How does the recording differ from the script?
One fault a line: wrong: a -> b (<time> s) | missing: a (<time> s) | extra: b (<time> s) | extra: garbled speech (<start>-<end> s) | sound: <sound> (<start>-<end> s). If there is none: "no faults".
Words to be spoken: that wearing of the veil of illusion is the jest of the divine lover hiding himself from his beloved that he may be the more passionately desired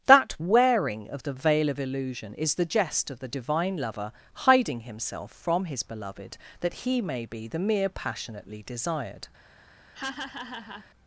wrong: more -> mere (7.6 s)
sound: laugh (9.9-10.9 s)